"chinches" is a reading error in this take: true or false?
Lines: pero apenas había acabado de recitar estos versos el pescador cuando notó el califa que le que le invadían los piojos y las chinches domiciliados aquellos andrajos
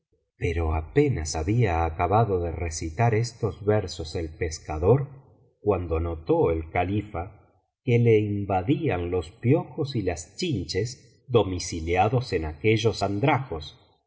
false